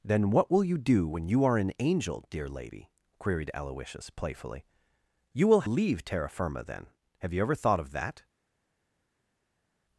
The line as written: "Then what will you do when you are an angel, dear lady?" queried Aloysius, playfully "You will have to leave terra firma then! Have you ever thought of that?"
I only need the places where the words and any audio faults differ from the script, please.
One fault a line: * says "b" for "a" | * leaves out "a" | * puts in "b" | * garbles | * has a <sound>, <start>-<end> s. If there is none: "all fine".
* leaves out "have to"